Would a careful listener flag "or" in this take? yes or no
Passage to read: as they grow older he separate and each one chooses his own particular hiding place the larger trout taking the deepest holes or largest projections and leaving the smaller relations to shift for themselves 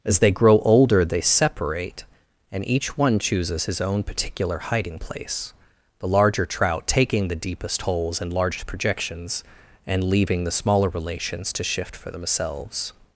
yes